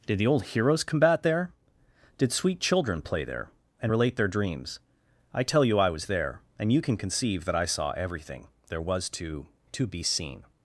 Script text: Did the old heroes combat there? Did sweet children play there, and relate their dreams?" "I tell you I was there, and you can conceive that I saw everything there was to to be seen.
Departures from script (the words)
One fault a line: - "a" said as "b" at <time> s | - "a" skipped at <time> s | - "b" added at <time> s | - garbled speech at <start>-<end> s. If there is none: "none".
none